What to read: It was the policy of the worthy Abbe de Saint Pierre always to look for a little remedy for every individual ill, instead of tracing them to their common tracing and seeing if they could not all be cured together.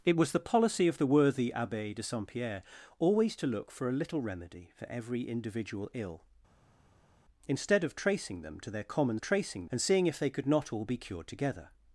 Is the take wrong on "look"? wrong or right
right